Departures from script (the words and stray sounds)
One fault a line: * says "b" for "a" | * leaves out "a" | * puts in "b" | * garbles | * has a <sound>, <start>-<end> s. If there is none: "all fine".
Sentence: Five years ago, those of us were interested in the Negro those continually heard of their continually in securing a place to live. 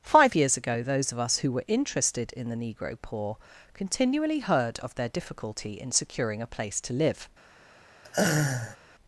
* puts in "who"
* says "poor" for "those"
* says "difficulty" for "continually"
* has a laugh, 8.0-8.8 s